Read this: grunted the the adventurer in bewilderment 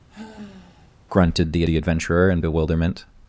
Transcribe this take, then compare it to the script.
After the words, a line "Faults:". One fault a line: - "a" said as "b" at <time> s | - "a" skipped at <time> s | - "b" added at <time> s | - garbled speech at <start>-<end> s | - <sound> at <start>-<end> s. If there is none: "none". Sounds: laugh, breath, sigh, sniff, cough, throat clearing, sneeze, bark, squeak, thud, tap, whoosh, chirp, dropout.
grunted the the adventurer in bewilderment
Faults:
- sigh at 0.1-1.0 s